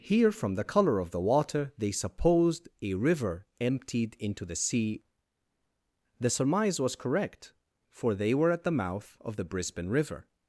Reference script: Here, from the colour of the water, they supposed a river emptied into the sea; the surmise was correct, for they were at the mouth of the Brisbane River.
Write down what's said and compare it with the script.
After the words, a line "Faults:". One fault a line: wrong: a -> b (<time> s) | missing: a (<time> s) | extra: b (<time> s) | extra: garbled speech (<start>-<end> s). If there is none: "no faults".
Here, from the colour of the water, they supposed a river emptied into the sea; the surmise was correct, for they were at the mouth of the Brisbane River.
Faults:
no faults